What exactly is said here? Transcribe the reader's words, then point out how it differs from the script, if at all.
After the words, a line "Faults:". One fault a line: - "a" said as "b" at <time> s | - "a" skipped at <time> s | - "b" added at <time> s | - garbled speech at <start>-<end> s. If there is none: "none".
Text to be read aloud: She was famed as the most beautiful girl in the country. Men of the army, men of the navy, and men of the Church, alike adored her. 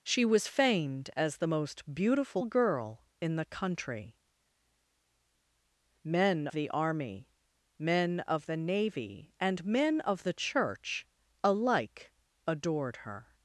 She was famed as the most beautiful girl in the country. Men the army, men of the navy, and men of the Church, alike adored her.
Faults:
- "of" skipped at 6.5 s